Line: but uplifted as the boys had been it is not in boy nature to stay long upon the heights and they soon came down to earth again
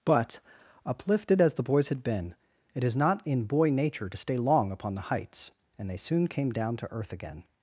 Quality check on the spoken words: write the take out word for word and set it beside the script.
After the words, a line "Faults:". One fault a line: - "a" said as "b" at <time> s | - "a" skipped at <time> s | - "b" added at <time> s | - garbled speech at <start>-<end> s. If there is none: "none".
but uplifted as the boys had been it is not in boy nature to stay long upon the heights and they soon came down to earth again
Faults:
none